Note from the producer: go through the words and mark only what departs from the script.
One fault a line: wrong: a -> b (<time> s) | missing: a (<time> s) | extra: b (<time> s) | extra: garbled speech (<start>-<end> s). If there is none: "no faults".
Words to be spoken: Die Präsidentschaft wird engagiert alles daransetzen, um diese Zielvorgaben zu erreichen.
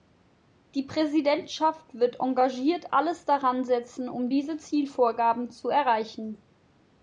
no faults